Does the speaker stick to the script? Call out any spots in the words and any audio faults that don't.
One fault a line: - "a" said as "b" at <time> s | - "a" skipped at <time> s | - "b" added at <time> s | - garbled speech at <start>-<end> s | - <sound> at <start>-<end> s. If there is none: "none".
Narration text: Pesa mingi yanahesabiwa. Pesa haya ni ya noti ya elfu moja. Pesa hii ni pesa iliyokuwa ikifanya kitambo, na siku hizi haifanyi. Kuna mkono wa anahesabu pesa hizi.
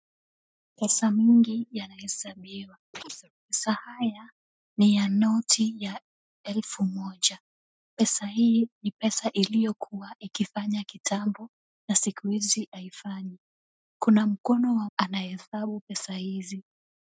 - chirp at 2.9-3.3 s